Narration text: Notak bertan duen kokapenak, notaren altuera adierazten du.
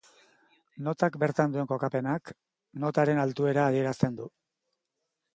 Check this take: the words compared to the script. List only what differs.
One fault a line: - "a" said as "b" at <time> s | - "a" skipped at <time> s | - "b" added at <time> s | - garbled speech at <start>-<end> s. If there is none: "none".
none